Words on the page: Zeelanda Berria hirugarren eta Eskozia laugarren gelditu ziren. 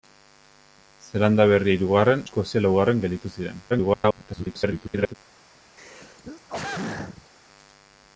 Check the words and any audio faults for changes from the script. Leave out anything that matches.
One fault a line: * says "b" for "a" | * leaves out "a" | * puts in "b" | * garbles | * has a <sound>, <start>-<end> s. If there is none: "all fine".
* leaves out "eta"
* garbles
* has a throat clearing, 5.8-7.3 s